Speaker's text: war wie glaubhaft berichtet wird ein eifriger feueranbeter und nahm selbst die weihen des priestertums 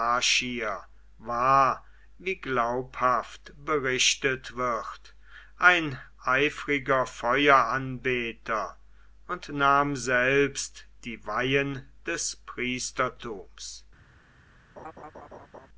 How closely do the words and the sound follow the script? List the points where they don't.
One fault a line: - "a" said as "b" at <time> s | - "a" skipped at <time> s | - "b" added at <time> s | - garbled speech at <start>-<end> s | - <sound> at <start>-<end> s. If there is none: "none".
- laugh at 14.8-15.7 s